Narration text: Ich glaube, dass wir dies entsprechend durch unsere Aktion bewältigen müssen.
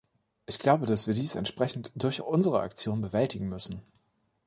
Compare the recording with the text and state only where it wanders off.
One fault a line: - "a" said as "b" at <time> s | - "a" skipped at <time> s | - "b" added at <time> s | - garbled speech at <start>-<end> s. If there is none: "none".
none